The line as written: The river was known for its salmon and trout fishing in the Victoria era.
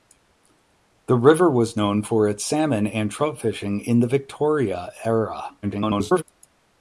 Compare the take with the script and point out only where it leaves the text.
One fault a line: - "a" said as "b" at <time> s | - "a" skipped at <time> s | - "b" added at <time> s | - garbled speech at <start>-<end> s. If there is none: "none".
- garbled speech at 5.6-6.2 s